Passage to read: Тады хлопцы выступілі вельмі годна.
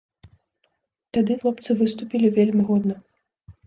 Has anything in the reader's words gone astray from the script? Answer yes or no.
no